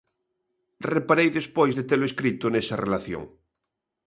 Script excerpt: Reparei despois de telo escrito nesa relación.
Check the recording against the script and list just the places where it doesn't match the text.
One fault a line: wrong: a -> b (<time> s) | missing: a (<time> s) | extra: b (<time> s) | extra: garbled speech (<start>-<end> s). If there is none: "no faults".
no faults